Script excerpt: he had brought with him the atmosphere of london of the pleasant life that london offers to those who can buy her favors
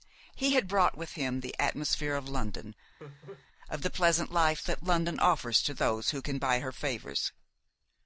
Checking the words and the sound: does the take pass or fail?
fail